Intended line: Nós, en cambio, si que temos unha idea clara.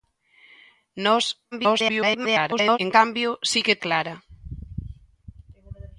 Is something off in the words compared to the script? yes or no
yes